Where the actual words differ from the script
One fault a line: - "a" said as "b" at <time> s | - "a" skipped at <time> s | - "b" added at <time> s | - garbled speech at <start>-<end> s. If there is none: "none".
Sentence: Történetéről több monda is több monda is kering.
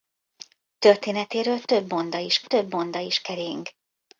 none